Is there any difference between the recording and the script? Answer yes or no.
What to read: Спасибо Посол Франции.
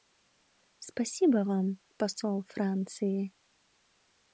yes